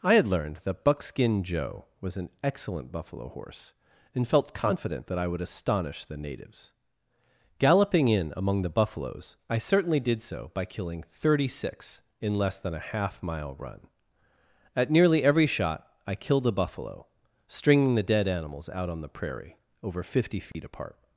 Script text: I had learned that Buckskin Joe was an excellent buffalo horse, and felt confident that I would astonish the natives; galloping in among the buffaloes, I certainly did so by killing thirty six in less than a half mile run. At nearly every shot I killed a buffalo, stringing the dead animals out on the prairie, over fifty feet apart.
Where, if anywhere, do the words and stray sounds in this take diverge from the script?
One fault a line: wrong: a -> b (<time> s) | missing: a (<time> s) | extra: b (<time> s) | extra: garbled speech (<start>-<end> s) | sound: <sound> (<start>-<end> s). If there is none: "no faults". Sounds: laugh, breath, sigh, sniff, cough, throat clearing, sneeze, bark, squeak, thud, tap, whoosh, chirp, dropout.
sound: dropout (20.5-20.5 s)